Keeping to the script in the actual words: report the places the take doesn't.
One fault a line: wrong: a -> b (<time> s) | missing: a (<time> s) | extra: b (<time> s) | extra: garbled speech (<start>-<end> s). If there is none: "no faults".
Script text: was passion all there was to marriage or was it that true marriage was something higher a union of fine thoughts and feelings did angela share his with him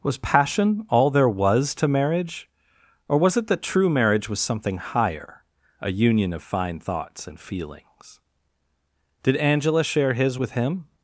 no faults